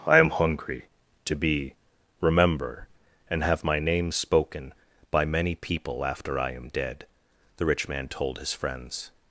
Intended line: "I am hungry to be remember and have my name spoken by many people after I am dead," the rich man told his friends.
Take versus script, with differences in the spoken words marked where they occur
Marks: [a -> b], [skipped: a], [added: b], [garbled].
"I am hungry to be remember and have my name spoken by many people after I am dead," the rich man told his friends.